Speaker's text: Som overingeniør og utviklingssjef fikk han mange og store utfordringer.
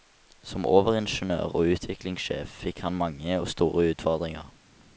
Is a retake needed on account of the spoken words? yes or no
no